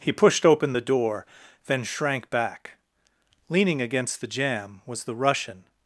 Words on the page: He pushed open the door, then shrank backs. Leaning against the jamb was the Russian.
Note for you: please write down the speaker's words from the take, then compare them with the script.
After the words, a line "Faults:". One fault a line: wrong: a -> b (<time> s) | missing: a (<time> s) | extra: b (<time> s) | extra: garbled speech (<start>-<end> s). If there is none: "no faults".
He pushed open the door, then shrank back. Leaning against the jamb was the Russian.
Faults:
wrong: backs -> back (2.3 s)